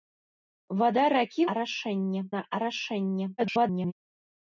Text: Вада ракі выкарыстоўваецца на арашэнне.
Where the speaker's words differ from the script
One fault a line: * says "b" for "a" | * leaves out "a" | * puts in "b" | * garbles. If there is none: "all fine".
* says "арашэнне" for "выкарыстоўваецца"
* garbles